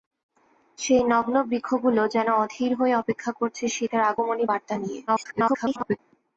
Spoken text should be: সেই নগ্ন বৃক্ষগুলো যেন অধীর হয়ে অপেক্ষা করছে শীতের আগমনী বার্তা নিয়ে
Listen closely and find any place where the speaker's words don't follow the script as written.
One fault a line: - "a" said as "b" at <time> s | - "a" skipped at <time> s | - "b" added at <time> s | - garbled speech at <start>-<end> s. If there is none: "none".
- garbled speech at 5.1-6.0 s